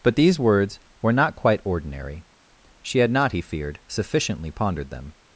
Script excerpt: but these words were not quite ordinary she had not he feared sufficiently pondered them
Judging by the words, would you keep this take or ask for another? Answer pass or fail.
pass